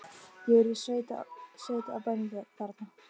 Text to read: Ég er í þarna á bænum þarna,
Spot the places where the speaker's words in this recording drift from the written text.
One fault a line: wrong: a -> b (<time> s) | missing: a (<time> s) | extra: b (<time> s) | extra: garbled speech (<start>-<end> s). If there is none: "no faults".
wrong: þarna -> sveit (0.8 s)